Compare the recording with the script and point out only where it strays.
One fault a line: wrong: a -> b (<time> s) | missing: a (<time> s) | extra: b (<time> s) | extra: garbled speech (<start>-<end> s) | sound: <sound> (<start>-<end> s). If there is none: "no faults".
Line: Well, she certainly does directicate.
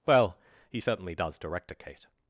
wrong: she -> he (0.7 s)